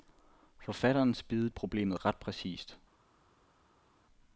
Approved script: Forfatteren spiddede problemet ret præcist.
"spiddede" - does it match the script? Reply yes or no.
yes